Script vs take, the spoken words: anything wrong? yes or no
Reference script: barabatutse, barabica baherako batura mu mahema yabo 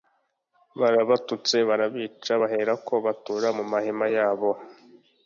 no